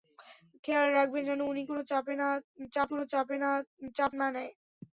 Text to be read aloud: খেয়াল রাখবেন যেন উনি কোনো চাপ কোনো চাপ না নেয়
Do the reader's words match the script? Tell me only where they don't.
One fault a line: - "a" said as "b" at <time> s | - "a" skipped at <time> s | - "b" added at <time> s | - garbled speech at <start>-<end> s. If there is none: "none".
none